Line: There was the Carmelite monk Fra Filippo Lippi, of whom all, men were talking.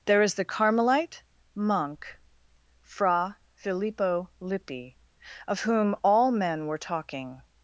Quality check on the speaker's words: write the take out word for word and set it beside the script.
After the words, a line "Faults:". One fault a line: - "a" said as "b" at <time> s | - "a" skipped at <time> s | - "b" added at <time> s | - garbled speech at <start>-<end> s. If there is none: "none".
There is the Carmelite monk Fra Filippo Lippi, of whom all, men were talking.
Faults:
- "was" said as "is" at 0.2 s